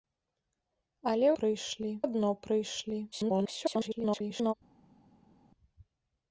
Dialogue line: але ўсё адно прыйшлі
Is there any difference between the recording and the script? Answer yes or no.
yes